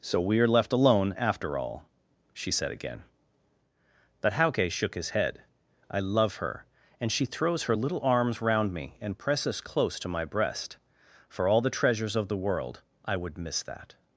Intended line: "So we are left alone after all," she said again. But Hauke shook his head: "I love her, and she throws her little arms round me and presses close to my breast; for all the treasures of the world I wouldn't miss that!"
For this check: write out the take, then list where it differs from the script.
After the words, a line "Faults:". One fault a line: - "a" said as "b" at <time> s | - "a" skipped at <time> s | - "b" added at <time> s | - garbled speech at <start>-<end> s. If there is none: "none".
"So we are left alone after all," she said again. But Hauke shook his head: "I love her, and she throws her little arms round me and presses close to my breast; for all the treasures of the world I would miss that!"
Faults:
- "wouldn't" said as "would" at 13.2 s